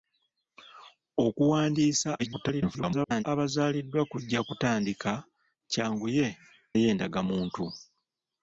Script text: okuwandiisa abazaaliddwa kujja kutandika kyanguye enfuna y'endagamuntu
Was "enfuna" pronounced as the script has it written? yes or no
no